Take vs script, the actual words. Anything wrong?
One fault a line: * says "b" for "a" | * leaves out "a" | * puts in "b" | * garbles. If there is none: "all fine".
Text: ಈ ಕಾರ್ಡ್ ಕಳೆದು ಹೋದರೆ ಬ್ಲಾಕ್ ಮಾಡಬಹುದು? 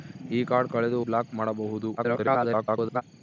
* leaves out "ಹೋದರೆ"
* garbles